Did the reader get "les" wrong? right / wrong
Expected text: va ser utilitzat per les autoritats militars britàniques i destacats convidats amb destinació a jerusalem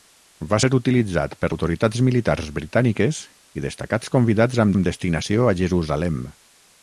wrong